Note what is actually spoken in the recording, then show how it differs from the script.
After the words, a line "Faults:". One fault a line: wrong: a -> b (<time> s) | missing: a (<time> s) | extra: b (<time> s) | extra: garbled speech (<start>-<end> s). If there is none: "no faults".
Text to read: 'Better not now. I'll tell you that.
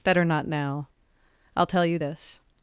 'Better not now. I'll tell you this.
Faults:
wrong: that -> this (2.0 s)